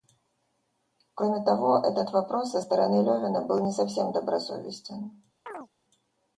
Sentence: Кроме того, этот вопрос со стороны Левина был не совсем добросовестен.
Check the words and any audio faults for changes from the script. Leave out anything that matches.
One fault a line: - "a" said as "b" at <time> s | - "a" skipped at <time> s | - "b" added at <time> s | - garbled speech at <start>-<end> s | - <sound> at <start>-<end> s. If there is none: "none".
- chirp at 5.5-5.7 s